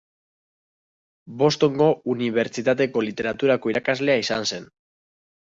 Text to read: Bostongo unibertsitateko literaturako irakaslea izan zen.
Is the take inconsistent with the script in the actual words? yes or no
no